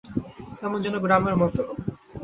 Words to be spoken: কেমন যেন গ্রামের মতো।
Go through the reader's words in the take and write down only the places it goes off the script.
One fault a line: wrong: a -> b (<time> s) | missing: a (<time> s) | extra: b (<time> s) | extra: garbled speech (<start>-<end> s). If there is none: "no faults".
no faults